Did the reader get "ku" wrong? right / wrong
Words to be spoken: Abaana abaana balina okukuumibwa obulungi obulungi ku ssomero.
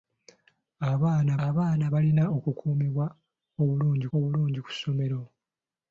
right